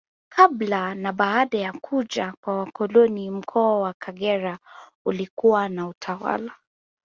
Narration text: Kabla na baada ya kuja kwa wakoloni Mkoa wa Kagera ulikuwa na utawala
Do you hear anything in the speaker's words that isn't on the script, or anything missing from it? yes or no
no